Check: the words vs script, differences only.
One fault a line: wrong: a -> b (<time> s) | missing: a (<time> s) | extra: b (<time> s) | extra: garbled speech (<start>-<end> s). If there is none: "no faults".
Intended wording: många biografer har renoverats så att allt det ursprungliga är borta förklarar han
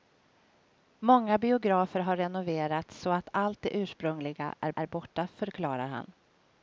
extra: är (4.7 s)